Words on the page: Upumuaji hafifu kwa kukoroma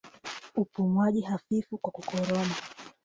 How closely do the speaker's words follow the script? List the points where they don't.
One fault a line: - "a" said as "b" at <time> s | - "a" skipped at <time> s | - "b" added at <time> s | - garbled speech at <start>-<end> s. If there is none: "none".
none